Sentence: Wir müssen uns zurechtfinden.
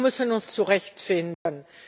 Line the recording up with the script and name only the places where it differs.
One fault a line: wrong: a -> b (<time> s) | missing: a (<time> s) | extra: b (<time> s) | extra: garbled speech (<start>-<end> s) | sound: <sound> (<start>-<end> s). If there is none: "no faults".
sound: dropout (1.3-1.5 s)